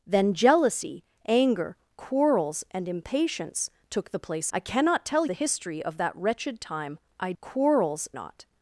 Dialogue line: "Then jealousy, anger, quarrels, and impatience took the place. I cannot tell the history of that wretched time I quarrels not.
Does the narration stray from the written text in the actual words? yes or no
no